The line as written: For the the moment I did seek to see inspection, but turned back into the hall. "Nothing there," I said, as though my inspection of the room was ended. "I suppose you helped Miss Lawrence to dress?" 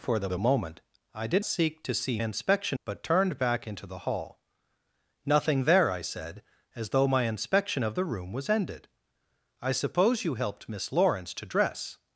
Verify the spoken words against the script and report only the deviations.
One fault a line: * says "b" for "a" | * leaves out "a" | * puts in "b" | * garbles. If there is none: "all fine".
all fine